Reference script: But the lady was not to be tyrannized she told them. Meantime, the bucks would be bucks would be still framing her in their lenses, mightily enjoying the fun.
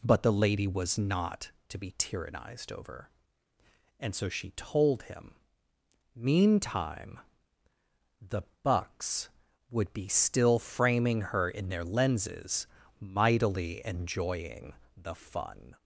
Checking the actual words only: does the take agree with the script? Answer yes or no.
no